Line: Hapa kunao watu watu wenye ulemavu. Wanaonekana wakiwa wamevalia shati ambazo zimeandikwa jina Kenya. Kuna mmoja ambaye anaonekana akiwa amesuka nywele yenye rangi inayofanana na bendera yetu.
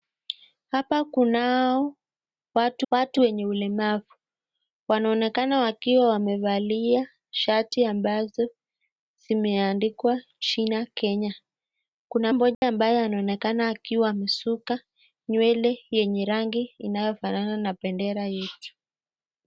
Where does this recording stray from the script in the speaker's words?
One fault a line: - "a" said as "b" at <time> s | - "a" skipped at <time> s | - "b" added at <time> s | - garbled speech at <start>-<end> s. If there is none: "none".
none